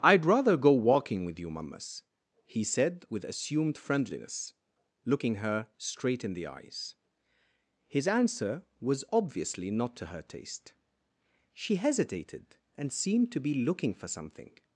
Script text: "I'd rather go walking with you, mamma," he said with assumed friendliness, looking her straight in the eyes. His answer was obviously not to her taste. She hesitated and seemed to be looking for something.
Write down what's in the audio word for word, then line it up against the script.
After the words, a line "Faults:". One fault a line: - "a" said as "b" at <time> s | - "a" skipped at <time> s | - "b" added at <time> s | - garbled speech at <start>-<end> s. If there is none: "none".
"I'd rather go walking with you, mammas," he said with assumed friendliness, looking her straight in the eyes. His answer was obviously not to her taste. She hesitated and seemed to be looking for something.
Faults:
- "mamma" said as "mammas" at 1.5 s